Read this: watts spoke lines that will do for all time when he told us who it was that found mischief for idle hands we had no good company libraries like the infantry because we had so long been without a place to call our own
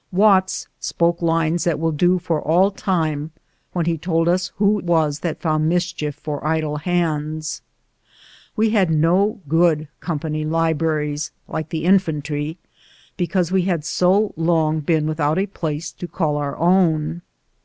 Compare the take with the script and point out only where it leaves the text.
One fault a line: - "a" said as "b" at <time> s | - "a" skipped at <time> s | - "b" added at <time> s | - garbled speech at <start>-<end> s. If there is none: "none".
- "it" skipped at 4.8 s